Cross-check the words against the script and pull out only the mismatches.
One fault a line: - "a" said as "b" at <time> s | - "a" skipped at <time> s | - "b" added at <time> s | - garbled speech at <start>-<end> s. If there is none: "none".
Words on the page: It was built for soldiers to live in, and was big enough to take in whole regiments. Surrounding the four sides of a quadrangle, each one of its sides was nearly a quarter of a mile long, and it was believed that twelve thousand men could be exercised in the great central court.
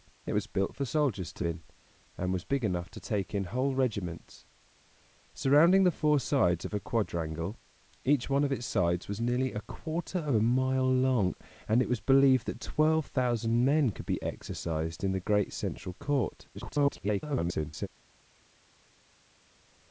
- "live" skipped at 1.4 s
- garbled speech at 16.5-17.9 s